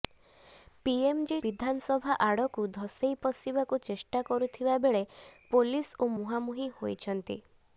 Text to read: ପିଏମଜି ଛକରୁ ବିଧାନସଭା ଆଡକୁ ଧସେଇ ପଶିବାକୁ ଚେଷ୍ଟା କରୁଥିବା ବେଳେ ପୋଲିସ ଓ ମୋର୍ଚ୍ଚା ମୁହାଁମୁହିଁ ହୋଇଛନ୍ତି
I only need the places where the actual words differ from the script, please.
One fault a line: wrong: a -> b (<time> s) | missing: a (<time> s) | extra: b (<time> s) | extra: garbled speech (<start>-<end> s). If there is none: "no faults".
missing: ଛକରୁ (1.4 s)
missing: ମୋର୍ଚ୍ଚା (6.1 s)